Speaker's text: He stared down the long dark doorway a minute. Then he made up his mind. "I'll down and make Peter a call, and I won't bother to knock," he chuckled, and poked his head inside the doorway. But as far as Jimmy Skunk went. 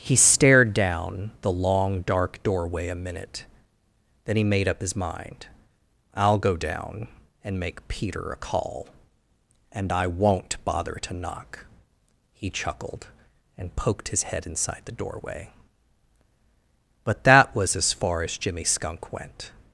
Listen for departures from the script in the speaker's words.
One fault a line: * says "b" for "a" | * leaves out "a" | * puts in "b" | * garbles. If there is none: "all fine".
* puts in "go"
* puts in "that was"